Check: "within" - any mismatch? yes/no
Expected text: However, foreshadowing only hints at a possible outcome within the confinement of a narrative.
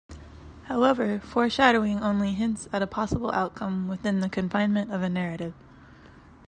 no